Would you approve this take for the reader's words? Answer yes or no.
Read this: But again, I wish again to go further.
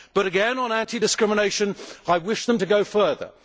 no